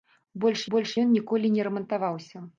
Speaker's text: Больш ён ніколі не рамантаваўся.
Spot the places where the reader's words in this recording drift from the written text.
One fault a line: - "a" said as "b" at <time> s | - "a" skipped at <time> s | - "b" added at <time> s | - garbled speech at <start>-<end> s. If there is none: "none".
- "больш" added at 0.7 s